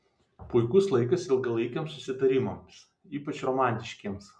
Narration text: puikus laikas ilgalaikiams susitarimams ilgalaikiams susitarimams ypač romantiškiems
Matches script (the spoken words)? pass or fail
fail